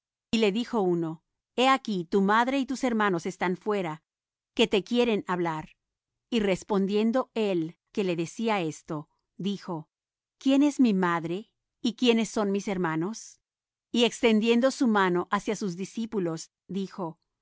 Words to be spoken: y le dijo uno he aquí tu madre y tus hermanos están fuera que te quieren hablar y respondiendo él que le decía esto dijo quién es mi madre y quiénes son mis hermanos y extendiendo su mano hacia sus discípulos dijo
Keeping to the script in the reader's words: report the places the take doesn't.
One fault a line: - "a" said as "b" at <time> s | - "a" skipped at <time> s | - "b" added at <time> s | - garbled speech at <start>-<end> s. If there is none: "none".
none